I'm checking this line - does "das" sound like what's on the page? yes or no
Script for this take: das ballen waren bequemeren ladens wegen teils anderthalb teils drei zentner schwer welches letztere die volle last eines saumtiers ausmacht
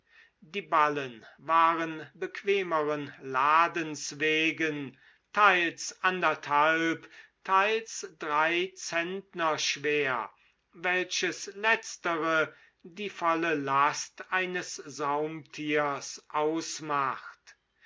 no